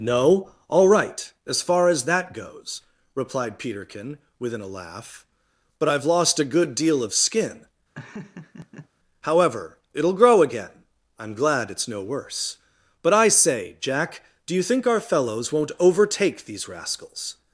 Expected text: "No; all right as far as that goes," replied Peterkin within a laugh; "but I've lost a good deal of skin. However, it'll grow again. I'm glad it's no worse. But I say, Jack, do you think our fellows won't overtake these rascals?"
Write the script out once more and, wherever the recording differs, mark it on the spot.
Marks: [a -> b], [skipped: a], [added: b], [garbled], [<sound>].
"No; all right as far as that goes," replied Peterkin within a laugh; "but I've lost a good deal of skin. [laugh] However, it'll grow again. I'm glad it's no worse. But I say, Jack, do you think our fellows won't overtake these rascals?"